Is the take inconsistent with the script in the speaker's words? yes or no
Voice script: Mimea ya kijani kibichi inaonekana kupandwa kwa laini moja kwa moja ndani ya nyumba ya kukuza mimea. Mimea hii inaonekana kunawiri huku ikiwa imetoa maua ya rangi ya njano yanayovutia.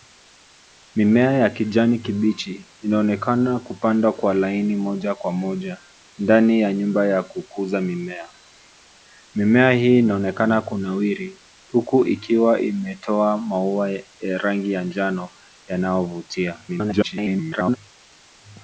yes